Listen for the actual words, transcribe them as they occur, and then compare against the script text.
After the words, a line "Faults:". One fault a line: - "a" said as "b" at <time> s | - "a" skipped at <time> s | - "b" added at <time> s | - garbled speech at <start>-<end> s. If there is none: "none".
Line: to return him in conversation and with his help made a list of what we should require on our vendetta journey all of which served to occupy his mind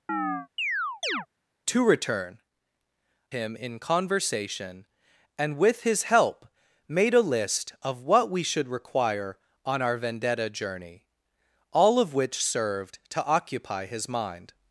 to return him in conversation and with his help made a list of what we should require on our vendetta journey all of which served to occupy his mind
Faults:
none